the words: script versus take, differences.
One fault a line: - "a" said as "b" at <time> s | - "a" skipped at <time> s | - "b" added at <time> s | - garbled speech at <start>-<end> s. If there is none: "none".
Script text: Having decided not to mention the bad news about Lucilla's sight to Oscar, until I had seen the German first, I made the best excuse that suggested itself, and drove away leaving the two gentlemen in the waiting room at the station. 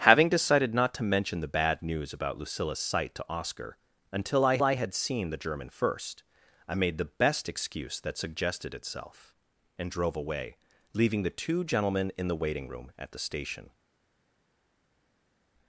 - "I" added at 4.6 s